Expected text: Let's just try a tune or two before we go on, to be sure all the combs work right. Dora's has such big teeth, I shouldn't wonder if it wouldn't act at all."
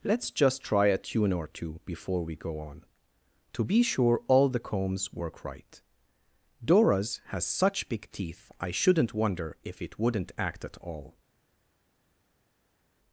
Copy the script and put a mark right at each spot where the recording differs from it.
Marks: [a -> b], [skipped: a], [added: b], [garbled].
Let's just try a tune or two before we go on, to be sure all the combs work right. Dora's has such big teeth, I shouldn't wonder if it wouldn't act at all."